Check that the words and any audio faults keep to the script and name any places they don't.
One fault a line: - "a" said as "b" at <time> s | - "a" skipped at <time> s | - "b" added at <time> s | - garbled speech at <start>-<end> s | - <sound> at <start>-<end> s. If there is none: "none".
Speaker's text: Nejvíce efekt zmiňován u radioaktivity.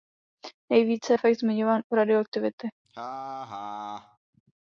- laugh at 2.8-4.2 s